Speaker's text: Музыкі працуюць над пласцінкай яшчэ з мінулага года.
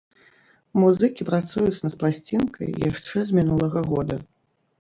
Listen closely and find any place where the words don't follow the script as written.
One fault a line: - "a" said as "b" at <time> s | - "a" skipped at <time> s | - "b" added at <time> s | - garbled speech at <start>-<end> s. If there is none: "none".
none